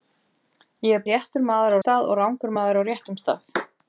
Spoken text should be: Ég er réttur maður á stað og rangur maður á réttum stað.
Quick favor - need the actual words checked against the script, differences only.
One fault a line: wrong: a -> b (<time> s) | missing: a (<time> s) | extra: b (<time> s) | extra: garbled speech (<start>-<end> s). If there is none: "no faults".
no faults